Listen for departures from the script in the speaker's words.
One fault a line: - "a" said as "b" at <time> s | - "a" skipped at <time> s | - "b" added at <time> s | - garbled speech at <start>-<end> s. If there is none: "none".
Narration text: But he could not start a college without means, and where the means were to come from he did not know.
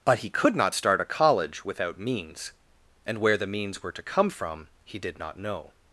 none